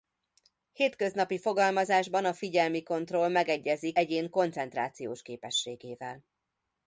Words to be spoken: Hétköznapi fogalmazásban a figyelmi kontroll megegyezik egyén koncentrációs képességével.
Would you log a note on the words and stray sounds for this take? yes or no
no